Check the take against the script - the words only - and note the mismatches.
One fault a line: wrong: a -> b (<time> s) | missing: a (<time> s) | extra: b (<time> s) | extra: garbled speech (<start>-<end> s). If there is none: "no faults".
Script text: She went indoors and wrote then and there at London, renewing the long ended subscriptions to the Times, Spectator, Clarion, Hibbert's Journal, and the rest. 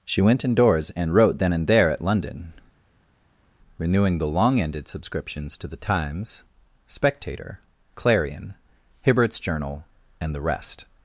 no faults